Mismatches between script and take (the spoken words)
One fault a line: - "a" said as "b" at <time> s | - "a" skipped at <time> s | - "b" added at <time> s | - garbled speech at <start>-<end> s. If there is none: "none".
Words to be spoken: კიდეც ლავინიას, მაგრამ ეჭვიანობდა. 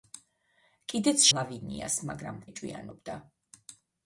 none